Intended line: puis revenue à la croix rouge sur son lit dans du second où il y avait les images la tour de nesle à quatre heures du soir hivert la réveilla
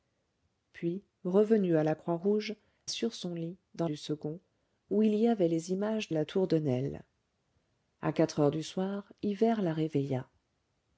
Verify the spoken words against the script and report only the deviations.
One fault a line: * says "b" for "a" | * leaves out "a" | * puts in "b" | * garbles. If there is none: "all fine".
all fine